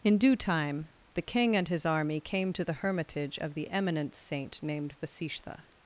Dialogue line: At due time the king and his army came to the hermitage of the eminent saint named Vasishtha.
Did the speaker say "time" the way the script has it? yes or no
yes